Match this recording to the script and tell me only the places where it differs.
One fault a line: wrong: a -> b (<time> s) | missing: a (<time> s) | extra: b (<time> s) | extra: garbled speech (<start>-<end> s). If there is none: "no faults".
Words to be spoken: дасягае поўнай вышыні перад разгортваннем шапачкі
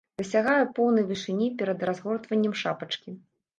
no faults